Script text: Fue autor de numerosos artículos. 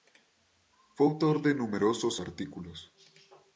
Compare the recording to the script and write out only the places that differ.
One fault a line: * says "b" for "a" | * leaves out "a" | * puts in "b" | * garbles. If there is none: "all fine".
all fine